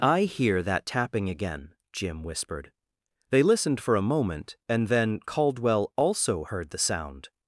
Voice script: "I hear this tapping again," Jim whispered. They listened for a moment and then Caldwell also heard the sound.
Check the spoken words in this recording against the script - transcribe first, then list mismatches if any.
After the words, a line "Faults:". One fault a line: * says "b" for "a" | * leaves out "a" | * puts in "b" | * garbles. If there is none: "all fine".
"I hear that tapping again," Jim whispered. They listened for a moment and then Caldwell also heard the sound.
Faults:
* says "that" for "this"